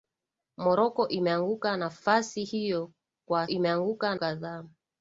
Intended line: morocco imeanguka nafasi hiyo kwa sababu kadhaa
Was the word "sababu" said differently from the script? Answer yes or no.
yes